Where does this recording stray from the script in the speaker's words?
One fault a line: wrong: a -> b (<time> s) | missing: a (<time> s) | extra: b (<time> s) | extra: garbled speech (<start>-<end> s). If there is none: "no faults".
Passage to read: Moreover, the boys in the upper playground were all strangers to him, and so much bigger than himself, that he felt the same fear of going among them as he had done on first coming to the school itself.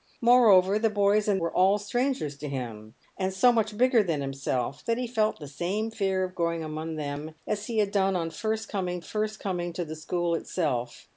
missing: the upper playground (1.4 s)
extra: first coming (9.0 s)